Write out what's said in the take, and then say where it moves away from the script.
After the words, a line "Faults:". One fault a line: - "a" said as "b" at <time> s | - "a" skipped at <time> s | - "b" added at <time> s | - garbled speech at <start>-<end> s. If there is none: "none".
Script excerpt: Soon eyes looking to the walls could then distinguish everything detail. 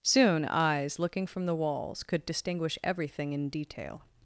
Soon eyes looking from the walls could distinguish everything in detail.
Faults:
- "to" said as "from" at 1.3 s
- "then" skipped at 2.2 s
- "in" added at 3.3 s